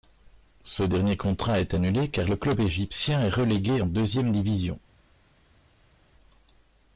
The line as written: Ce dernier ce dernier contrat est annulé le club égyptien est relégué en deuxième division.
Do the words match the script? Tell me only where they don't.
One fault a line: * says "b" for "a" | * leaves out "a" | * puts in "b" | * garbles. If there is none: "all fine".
* leaves out "ce dernier"
* puts in "car"